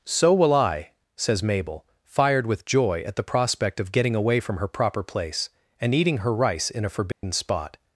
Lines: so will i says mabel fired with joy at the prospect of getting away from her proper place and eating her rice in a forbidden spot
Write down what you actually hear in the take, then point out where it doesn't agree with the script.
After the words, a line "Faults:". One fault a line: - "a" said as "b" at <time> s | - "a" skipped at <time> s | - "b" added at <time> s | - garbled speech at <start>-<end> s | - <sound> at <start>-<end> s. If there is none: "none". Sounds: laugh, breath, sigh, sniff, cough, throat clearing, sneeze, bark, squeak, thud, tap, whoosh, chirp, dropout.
so will i says mabel fired with joy at the prospect of getting away from her proper place and eating her rice in a forbidden spot
Faults:
- dropout at 7.1-7.2 s